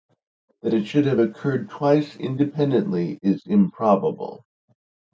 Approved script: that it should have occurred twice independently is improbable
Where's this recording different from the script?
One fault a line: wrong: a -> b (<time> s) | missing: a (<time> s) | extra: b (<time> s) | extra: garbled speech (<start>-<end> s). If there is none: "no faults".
no faults